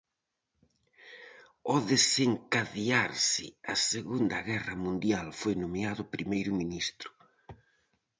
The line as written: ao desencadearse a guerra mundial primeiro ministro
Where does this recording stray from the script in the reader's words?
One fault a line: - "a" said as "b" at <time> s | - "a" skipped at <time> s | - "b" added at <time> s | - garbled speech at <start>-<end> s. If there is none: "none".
- "segunda" added at 3.9 s
- "foi nomeado" added at 5.4 s